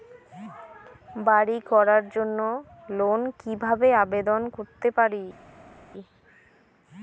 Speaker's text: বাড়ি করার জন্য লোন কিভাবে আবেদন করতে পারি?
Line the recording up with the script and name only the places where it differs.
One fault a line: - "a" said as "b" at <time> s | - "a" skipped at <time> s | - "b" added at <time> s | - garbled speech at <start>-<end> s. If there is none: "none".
none